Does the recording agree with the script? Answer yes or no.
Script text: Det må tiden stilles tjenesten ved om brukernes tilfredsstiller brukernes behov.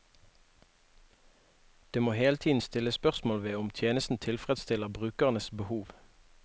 no